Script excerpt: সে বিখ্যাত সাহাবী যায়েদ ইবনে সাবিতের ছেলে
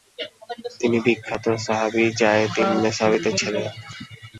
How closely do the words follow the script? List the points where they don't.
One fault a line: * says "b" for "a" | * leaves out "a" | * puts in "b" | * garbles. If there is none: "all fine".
* says "তিনি" for "সে"